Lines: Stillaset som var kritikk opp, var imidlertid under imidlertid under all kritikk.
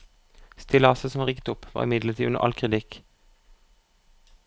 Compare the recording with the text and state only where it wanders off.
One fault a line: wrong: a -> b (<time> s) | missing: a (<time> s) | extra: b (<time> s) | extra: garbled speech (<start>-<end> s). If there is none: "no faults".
wrong: kritikk -> rigget (1.3 s)
missing: imidlertid under (2.4 s)